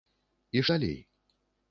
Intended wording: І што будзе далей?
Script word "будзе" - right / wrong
wrong